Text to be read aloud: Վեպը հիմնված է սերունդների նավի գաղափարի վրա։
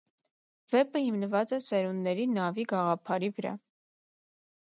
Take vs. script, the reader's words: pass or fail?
pass